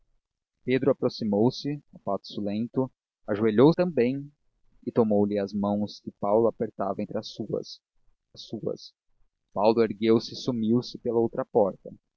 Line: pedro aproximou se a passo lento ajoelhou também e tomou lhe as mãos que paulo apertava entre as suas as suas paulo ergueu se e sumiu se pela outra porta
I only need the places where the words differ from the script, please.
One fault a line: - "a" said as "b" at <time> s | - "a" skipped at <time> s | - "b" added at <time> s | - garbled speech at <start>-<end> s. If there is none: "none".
none